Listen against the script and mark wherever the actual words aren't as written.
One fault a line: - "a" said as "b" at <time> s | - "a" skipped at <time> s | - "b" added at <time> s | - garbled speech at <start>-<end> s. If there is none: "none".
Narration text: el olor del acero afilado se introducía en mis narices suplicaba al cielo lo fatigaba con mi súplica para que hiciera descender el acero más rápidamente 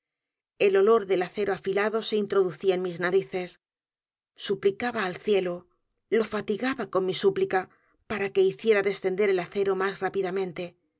none